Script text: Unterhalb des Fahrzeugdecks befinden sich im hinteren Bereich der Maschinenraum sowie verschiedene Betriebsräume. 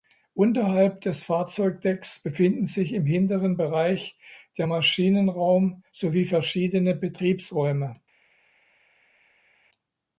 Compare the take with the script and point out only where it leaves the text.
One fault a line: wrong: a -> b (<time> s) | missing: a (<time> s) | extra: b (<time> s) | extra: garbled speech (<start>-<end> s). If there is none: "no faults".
no faults